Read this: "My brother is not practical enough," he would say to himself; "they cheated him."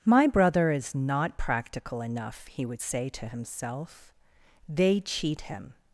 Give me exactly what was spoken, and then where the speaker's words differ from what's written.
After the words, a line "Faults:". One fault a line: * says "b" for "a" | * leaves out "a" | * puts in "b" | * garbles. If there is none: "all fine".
"My brother is not practical enough," he would say to himself; "they cheat him."
Faults:
* says "cheat" for "cheated"